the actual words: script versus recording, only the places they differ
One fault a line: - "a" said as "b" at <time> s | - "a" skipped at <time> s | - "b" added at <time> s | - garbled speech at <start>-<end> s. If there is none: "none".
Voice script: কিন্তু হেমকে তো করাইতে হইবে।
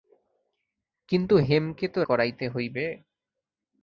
none